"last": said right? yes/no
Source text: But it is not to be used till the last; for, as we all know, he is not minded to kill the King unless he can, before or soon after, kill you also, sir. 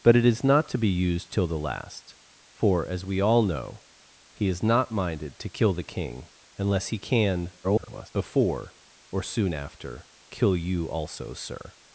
yes